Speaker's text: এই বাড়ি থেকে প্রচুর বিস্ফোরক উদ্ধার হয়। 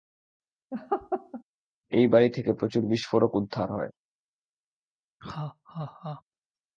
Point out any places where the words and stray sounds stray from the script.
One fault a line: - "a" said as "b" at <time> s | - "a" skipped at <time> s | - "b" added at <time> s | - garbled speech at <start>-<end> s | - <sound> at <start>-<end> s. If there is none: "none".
- laugh at 0.7-1.4 s
- laugh at 5.2-6.2 s